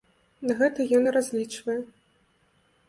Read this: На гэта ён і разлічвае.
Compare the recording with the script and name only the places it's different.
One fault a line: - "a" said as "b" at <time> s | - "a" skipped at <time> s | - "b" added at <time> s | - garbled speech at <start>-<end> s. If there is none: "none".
none